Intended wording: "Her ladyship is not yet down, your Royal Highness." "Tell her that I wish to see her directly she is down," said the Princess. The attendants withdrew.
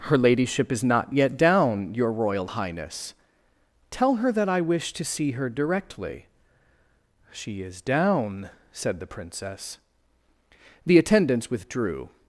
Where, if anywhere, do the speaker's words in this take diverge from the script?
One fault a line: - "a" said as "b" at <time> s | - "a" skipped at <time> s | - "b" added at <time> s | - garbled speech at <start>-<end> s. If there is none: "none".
none